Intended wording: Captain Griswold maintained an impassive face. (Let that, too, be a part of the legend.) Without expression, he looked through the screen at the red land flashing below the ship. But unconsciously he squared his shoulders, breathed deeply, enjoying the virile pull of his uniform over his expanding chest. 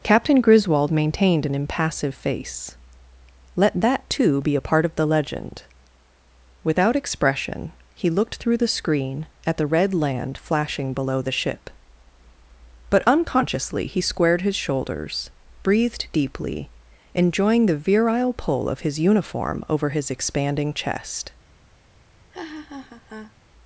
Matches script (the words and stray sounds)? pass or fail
fail